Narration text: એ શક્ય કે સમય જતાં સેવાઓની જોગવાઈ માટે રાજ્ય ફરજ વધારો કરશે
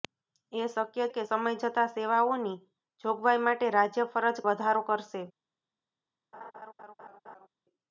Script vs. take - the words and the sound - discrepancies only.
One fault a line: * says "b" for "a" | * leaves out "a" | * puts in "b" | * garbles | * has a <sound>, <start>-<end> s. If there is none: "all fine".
* has a laugh, 6.3-7.5 s